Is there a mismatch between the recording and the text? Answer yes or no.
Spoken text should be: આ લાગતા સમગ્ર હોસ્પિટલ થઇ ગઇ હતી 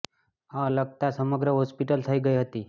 no